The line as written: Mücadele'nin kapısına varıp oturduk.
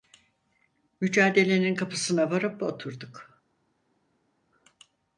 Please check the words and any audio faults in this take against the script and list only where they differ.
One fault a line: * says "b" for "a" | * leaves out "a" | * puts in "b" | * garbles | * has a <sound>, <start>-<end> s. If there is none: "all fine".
all fine